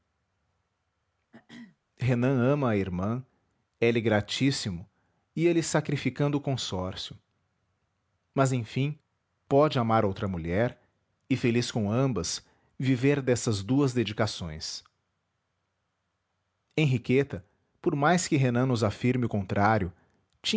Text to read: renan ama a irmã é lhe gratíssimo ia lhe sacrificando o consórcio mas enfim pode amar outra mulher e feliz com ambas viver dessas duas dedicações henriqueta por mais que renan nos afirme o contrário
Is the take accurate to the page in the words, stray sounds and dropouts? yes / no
no